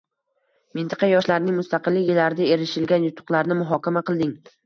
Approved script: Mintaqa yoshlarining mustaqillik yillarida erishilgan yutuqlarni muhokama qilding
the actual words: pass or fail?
pass